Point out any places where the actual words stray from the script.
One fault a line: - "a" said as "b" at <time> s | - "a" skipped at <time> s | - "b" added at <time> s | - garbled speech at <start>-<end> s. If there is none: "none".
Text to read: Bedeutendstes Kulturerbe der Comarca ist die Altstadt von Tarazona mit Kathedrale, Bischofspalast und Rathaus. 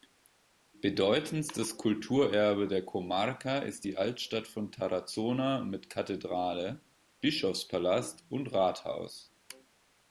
none